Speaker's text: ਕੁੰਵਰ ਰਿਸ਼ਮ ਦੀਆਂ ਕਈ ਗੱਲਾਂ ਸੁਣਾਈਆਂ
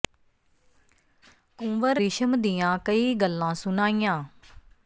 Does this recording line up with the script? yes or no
yes